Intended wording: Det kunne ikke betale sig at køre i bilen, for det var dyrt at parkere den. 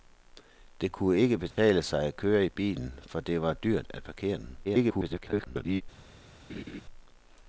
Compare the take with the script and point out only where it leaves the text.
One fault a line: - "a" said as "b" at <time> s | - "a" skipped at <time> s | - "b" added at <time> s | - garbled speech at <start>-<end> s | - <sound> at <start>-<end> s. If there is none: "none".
- dropout at 1.5-1.6 s
- garbled speech at 4.6-5.8 s
- laugh at 6.5-6.8 s